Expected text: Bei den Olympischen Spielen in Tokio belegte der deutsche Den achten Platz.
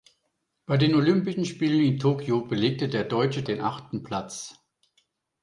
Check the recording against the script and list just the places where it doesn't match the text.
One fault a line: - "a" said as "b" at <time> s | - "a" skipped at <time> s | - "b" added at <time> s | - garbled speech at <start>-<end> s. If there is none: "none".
none